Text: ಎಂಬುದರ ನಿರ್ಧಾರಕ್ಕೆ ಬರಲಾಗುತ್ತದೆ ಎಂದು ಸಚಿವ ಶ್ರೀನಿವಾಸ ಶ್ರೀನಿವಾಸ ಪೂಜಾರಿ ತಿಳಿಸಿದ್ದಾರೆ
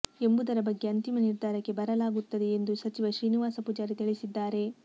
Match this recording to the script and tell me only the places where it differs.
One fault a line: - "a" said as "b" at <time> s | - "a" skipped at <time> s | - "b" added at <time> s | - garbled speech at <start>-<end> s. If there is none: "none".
- "ಬಗ್ಗೆ ಅಂತಿಮ" added at 0.6 s
- "ಶ್ರೀನಿವಾಸ" skipped at 3.6 s